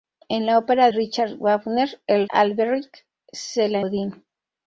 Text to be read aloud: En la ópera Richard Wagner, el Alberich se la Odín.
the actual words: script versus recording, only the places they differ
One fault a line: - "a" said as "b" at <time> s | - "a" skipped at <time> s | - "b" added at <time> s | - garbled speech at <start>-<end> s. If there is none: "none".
none